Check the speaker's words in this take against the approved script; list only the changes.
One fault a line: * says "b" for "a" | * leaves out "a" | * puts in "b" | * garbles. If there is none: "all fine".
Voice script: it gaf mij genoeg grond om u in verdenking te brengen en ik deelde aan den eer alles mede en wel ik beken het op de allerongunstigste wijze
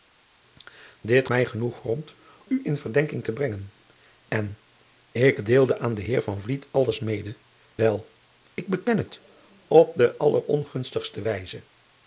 * leaves out "gaf"
* leaves out "om"
* leaves out "en"